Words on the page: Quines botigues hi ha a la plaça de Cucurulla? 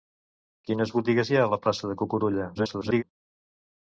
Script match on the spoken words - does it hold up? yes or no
no